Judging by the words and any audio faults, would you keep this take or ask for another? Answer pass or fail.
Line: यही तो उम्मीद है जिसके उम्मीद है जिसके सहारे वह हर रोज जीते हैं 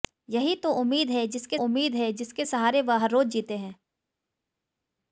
pass